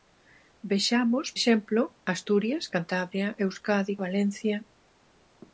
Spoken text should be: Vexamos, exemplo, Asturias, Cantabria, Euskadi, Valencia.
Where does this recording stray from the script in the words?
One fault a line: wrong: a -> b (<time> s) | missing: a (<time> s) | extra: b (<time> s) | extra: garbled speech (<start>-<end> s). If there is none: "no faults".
no faults